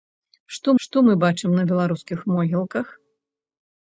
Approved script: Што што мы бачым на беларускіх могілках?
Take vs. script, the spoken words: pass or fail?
pass